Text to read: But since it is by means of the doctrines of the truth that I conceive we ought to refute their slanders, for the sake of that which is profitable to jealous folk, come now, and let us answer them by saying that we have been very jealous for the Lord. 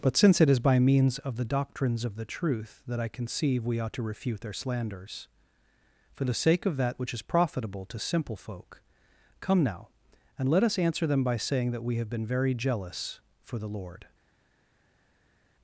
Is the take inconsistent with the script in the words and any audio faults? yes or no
yes